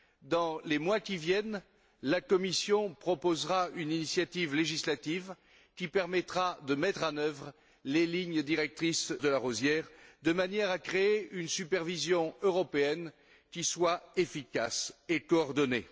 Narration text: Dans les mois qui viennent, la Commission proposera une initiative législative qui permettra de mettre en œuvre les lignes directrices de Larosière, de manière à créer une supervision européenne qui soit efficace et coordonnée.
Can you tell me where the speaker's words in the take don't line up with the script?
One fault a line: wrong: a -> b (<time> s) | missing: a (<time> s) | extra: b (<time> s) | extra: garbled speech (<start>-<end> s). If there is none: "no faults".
no faults